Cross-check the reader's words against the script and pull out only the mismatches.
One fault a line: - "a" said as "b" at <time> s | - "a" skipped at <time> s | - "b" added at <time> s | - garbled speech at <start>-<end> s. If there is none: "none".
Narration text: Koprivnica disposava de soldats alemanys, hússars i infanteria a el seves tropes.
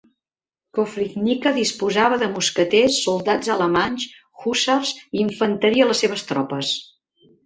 - "mosqueters" added at 2.4 s
- "el" said as "les" at 5.9 s